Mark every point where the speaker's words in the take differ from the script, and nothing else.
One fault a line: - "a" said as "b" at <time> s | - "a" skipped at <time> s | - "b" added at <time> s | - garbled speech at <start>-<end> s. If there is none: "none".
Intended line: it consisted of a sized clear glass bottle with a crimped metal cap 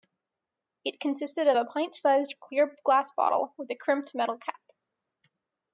- "pint" added at 1.6 s